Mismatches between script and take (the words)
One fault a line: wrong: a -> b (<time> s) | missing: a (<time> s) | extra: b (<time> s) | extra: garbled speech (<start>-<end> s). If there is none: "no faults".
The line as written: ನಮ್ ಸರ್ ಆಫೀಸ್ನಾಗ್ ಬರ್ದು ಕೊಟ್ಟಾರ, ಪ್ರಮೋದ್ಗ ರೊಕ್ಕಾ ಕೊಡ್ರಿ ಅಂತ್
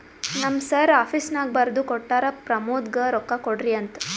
no faults